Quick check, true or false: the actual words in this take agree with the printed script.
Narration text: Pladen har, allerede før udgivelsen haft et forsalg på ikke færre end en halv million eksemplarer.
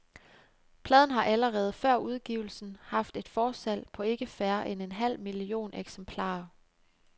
true